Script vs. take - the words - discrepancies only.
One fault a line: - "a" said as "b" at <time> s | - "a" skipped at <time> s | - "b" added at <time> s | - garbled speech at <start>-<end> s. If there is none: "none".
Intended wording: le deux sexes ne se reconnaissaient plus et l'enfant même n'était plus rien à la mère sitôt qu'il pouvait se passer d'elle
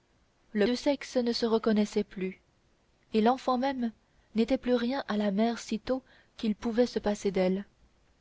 none